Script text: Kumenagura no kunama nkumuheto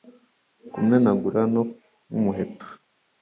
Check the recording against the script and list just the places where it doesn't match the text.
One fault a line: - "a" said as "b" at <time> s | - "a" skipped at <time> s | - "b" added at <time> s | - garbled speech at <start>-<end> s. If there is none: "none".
- "kunama" skipped at 1.6 s